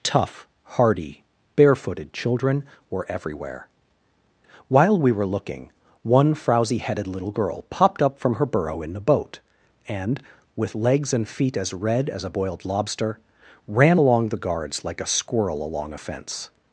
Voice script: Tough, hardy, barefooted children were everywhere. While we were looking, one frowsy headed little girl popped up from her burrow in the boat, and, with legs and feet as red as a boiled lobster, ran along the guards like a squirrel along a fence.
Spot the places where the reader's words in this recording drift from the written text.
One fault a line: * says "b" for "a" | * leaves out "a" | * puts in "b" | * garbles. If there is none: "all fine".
all fine